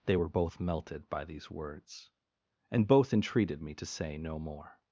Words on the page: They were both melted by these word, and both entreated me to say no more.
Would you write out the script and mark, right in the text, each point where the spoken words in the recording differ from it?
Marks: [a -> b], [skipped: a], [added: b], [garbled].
They were both melted by these [word, -> words] and both entreated me to say no more.